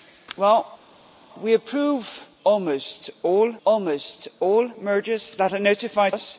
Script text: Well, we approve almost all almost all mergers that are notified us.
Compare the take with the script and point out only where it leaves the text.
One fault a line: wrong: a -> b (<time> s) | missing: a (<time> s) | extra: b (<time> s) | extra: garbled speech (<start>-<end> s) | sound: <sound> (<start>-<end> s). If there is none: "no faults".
no faults